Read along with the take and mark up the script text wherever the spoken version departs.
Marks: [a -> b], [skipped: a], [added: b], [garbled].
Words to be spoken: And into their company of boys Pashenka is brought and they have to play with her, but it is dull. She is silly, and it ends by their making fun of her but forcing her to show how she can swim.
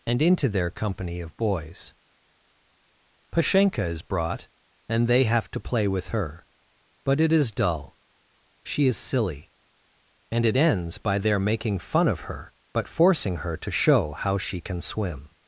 And into their company of boys Pashenka is brought and they have to play with her, but it is dull. She is silly, and it ends by their making fun of her but forcing her to show how she can swim.